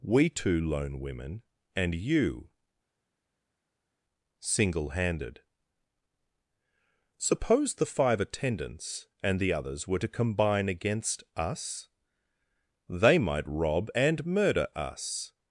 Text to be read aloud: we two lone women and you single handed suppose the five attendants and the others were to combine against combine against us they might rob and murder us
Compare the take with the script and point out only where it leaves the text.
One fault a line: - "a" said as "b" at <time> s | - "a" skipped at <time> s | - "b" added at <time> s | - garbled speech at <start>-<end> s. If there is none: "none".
- "combine against" skipped at 11.2 s